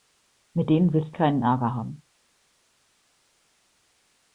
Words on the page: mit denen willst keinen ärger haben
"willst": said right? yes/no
yes